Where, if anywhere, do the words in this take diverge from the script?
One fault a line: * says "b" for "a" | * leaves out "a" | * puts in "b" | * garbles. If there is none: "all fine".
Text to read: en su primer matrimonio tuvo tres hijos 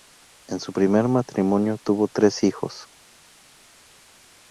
all fine